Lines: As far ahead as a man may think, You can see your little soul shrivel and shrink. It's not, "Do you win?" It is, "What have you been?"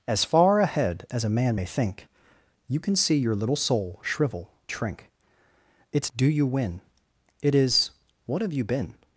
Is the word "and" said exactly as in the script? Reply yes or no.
no